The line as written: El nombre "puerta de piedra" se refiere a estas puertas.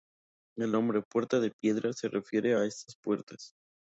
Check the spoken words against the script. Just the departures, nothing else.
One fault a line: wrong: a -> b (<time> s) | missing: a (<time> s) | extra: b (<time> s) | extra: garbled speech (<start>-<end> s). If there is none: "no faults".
no faults